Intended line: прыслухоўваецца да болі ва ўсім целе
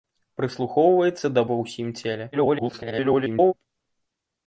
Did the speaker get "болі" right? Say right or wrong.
wrong